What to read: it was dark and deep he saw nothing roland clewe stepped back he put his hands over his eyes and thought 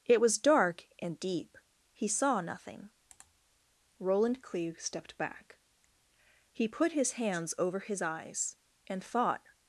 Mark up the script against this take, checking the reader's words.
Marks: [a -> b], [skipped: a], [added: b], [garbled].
it was dark and deep he saw nothing roland clewe stepped back he put his hands over his eyes and thought